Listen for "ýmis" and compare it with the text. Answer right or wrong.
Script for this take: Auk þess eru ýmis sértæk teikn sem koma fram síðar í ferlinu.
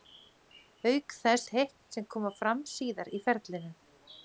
wrong